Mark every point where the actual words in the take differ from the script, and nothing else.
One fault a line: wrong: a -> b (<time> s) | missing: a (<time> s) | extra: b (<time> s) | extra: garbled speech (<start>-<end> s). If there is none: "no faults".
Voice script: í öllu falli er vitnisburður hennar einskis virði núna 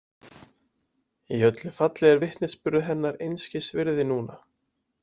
no faults